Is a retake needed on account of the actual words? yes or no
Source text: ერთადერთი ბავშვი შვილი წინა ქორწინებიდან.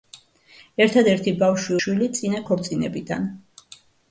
no